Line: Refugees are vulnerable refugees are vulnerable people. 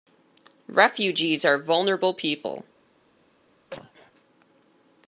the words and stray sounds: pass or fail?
fail